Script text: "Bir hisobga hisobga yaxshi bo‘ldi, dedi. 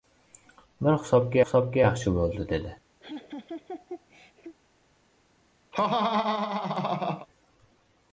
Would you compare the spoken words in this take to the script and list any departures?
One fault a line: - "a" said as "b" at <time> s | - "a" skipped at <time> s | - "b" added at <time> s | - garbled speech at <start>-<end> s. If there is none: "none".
none